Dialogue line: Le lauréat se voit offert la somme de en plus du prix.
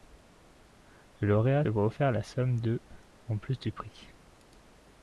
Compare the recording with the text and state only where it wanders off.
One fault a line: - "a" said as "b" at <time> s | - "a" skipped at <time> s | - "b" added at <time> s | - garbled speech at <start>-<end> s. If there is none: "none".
- "se" skipped at 1.6 s